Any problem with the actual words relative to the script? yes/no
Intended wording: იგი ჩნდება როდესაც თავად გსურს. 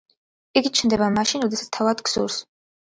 yes